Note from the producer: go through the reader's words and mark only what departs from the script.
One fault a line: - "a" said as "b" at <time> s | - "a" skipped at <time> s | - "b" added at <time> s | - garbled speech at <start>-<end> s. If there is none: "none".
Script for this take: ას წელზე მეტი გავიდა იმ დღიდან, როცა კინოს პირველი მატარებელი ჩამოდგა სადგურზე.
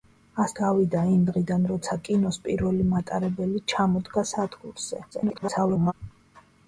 - "წელზე მეტი" skipped at 0.5 s
- garbled speech at 5.1-5.9 s